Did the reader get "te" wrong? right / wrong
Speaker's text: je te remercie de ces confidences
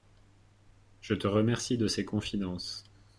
right